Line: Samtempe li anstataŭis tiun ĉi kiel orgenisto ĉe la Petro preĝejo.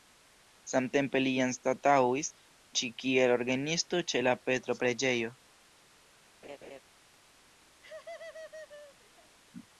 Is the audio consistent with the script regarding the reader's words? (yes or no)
no